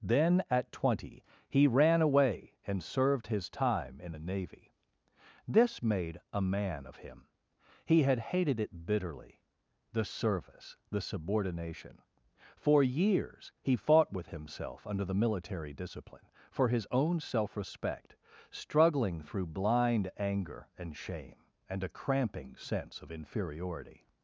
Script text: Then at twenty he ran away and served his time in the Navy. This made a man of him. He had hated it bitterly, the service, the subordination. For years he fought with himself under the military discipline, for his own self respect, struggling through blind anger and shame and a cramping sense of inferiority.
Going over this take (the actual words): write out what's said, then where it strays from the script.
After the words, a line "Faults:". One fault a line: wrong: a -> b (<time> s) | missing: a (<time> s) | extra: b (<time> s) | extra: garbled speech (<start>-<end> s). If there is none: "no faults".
Then at twenty he ran away and served his time in the Navy. This made a man of him. He had hated it bitterly, the service, the subordination. For years he fought with himself under the military discipline, for his own self respect, struggling through blind anger and shame and a cramping sense of inferiority.
Faults:
no faults